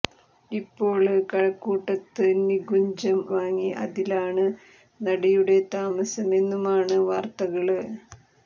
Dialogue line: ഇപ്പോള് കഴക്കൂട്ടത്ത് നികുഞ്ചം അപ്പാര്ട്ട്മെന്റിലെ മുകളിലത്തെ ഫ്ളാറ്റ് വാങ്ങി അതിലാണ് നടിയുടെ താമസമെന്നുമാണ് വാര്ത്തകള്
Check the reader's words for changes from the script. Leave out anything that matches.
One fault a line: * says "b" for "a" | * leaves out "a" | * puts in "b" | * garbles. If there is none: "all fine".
* leaves out "അപ്പാര്ട്ട്മെന്റിലെ മുകളിലത്തെ ഫ്ളാറ്റ്"